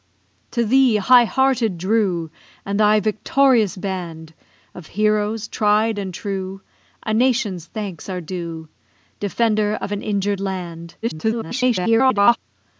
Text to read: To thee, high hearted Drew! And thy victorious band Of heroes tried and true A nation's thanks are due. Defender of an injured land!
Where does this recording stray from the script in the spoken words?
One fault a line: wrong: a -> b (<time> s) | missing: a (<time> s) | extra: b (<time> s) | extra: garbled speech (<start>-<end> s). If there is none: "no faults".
extra: garbled speech (11.0-12.4 s)